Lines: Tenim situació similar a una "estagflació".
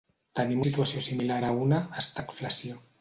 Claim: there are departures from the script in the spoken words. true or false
false